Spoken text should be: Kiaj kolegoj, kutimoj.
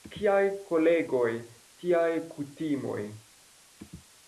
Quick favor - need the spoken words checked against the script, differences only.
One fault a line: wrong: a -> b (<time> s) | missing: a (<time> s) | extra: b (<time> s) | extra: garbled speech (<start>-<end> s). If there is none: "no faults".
extra: tiaj (1.8 s)